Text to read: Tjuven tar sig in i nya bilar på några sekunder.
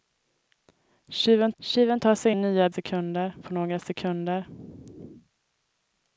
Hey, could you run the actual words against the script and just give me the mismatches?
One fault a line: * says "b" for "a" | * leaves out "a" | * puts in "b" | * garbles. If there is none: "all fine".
* puts in "tjuven"
* leaves out "in"
* says "sekunder" for "bilar"